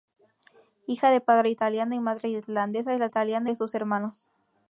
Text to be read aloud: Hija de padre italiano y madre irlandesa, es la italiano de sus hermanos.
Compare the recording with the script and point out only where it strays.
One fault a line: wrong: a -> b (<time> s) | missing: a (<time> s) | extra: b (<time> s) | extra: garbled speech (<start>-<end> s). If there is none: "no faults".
no faults